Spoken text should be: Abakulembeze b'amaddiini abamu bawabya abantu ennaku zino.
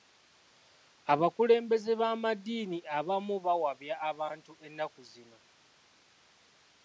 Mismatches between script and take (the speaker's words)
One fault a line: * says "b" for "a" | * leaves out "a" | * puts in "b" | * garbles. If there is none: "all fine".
all fine